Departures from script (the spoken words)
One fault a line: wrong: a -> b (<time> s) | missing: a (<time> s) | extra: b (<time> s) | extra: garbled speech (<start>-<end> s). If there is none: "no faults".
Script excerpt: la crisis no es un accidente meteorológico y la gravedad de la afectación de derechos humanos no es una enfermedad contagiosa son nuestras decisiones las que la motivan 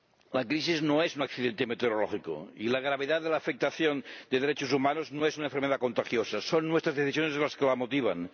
no faults